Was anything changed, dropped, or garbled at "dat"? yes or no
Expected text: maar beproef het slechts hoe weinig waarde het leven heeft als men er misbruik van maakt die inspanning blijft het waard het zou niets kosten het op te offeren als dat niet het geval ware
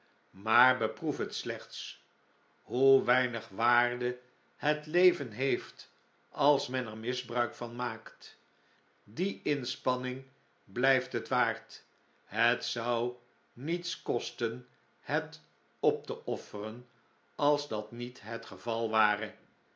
no